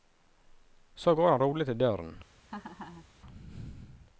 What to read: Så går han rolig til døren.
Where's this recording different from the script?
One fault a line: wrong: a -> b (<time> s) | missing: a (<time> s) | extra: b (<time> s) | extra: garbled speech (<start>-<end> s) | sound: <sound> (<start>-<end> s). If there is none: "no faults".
sound: laugh (2.5-3.1 s)